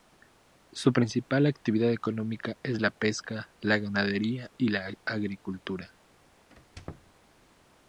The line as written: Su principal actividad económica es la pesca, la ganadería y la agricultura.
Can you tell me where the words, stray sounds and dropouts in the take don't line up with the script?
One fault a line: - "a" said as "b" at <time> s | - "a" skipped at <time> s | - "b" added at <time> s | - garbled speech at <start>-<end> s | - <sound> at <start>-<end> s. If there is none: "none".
- squeak at 6.5-7.1 s